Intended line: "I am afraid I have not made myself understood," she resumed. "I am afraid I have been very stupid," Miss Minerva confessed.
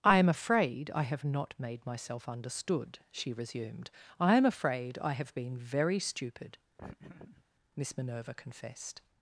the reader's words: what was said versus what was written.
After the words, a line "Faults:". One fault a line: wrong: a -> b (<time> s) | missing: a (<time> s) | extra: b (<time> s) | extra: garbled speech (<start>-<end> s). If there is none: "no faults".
"I am afraid I have not made myself understood," she resumed. "I am afraid I have been very stupid," Miss Minerva confessed.
Faults:
no faults